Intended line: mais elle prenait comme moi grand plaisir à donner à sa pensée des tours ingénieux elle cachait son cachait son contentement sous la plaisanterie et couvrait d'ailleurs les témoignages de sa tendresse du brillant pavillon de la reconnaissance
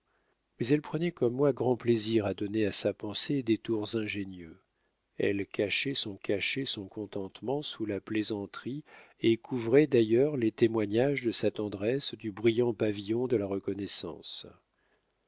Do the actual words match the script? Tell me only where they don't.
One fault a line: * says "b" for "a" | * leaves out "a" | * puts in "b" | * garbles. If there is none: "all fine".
all fine